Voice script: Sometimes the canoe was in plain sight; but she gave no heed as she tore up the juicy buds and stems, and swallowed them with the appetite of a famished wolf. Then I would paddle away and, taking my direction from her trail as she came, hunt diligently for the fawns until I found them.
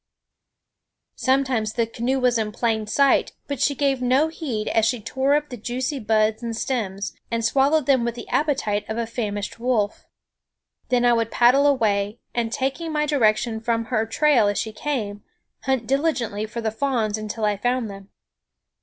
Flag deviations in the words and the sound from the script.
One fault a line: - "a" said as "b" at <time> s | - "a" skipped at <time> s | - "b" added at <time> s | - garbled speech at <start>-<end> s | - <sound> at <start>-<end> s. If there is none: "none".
none